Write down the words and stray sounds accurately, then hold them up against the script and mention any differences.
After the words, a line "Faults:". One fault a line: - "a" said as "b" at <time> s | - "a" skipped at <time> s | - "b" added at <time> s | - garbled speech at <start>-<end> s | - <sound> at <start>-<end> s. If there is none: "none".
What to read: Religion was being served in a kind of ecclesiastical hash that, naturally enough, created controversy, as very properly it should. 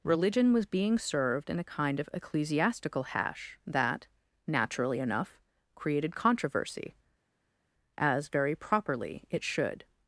Religion was being served in a kind of ecclesiastical hash that, naturally enough, created controversy, as very properly it should.
Faults:
none